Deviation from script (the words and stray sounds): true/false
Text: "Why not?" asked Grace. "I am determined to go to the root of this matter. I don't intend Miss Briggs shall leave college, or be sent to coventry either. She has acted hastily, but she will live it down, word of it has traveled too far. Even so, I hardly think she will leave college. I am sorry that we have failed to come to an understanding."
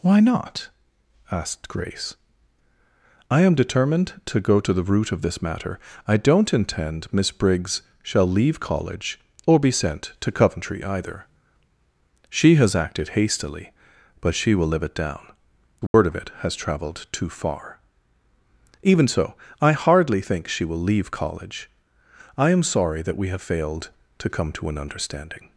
true